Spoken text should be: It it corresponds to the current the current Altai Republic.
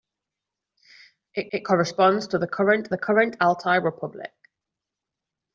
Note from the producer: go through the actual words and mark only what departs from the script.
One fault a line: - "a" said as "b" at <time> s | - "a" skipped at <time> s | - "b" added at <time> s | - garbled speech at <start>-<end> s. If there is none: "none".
none